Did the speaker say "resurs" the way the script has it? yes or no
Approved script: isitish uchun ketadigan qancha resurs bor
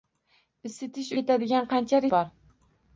no